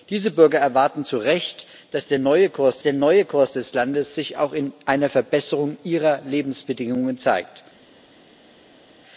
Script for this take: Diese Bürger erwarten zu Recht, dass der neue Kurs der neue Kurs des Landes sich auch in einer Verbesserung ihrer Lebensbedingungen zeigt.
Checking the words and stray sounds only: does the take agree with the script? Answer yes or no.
yes